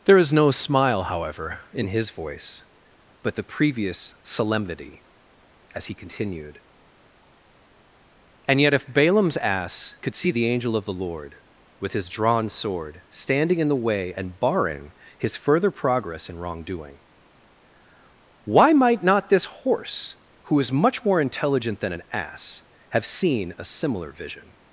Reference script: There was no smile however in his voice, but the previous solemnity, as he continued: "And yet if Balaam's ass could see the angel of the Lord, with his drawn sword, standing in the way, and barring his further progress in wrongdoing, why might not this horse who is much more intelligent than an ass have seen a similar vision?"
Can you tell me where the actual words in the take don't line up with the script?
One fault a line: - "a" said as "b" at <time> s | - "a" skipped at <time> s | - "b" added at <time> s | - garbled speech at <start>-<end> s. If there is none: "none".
- "was" said as "is" at 0.2 s